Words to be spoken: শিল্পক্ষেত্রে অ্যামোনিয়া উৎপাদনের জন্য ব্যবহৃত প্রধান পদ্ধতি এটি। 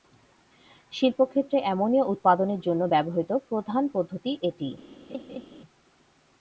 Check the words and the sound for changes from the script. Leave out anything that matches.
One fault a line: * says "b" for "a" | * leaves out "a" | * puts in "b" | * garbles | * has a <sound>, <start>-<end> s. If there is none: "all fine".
* has a laugh, 5.1-5.5 s